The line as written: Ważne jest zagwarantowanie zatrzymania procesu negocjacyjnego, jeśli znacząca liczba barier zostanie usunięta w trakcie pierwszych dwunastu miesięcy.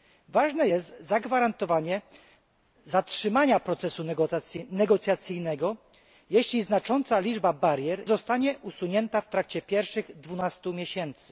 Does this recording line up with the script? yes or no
yes